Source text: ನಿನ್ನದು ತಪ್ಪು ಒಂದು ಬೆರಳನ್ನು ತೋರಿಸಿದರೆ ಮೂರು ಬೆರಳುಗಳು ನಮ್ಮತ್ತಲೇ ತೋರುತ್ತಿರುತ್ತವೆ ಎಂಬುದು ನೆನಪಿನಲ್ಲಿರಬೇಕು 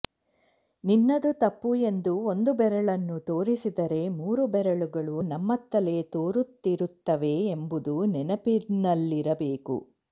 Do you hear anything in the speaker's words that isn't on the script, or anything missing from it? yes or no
yes